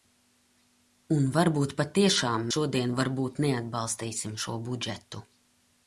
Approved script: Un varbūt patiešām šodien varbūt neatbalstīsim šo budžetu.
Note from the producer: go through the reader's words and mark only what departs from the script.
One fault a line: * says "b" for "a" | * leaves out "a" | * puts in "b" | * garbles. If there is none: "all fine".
all fine